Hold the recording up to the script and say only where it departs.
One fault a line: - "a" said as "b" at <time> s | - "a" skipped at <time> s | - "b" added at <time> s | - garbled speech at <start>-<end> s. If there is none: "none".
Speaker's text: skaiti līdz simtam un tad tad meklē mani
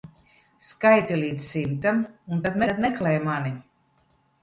none